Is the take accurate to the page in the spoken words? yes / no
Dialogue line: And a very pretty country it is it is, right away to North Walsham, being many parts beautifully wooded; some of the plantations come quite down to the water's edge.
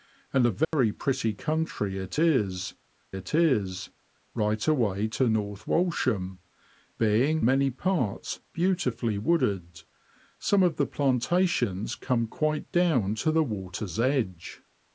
yes